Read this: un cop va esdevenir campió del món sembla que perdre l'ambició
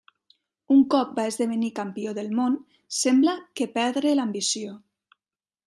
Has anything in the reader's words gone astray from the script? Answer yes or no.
no